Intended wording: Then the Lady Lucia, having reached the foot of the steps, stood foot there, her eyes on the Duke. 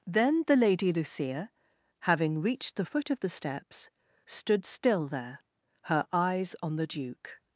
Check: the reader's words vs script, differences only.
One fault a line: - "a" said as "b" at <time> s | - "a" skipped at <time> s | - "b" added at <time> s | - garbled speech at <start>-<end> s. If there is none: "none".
- "foot" said as "still" at 4.6 s